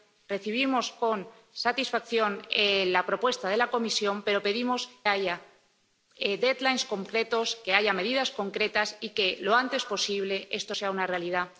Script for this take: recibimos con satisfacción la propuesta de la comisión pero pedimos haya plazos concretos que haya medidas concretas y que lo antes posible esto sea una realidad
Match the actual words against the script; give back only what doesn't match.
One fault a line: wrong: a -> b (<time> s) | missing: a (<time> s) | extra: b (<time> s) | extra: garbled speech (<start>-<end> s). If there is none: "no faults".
no faults